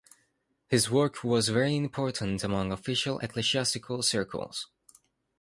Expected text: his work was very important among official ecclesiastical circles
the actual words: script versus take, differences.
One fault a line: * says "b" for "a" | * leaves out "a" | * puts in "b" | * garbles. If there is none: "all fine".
all fine